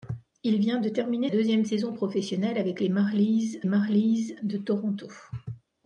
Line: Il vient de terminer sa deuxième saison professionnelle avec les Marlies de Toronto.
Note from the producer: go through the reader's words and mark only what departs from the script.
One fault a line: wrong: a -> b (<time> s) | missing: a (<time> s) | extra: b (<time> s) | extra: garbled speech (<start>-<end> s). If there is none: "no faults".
missing: sa (1.3 s)
extra: Marlies (3.6 s)